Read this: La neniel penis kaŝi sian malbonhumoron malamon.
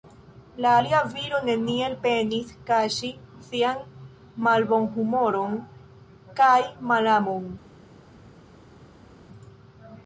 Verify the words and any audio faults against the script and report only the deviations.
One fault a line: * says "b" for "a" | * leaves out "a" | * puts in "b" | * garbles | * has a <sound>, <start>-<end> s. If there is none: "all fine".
* puts in "alia viro"
* puts in "kaj"